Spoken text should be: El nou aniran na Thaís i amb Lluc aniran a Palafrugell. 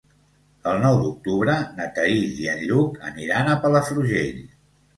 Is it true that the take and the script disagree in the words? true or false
true